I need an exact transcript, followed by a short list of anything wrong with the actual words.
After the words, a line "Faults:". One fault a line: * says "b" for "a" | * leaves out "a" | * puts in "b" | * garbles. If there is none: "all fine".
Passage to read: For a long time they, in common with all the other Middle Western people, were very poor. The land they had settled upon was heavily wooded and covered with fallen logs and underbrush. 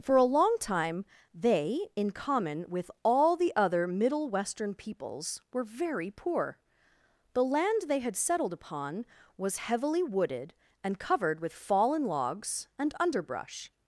For a long time they, in common with all the other Middle Western peoples, were very poor. The land they had settled upon was heavily wooded and covered with fallen logs and underbrush.
Faults:
* says "peoples" for "people"